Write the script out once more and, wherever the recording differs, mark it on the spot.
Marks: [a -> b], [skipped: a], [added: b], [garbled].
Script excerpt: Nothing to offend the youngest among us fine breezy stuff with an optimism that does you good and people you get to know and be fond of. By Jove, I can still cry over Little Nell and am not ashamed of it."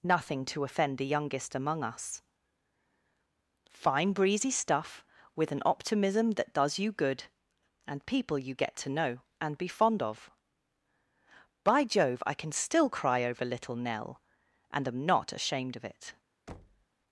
Nothing to offend the youngest among us fine breezy stuff with an optimism that does you good and people you get to know and be fond of. By Jove, I can still cry over Little Nell and am not ashamed of it."